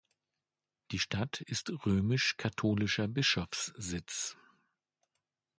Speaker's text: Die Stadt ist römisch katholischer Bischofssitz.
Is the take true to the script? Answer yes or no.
yes